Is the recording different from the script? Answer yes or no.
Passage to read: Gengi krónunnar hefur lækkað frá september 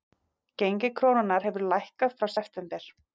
no